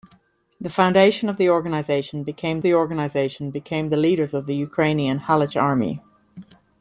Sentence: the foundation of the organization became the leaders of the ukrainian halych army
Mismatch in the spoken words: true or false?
true